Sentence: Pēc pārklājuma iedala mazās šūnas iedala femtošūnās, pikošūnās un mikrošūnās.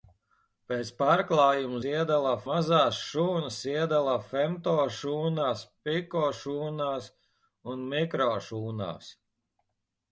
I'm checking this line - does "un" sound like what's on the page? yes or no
yes